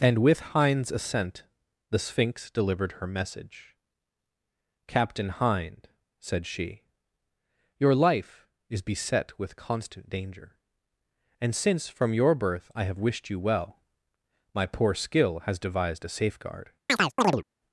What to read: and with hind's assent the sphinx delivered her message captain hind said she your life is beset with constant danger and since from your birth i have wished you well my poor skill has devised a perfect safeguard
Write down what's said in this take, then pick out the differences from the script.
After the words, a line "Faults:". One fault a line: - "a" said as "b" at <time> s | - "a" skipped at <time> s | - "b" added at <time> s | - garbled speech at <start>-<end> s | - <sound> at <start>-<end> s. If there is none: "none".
and with hind's assent the sphinx delivered her message captain hind said she your life is beset with constant danger and since from your birth i have wished you well my poor skill has devised a safeguard
Faults:
- "perfect" skipped at 16.1 s
- chirp at 16.9-17.4 s